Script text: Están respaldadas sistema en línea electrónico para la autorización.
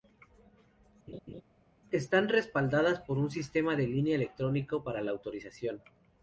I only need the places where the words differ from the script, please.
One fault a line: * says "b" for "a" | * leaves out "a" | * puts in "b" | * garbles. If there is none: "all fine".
* puts in "por un"